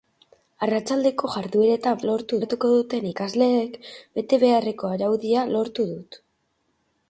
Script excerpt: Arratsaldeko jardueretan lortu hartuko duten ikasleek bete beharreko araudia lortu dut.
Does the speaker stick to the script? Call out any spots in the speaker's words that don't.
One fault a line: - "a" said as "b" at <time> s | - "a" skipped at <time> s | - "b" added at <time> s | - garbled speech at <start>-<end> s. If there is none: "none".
none